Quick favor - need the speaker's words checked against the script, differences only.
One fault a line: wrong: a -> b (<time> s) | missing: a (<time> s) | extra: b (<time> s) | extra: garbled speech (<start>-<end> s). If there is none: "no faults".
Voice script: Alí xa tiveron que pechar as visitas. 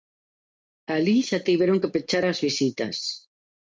no faults